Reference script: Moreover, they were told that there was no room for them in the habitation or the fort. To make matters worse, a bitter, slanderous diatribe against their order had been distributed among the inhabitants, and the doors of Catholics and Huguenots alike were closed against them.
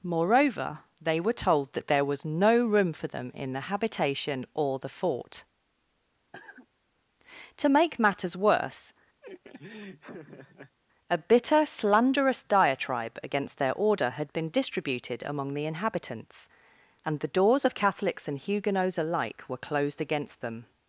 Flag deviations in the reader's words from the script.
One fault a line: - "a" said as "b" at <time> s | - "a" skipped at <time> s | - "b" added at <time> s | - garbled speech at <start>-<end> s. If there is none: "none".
none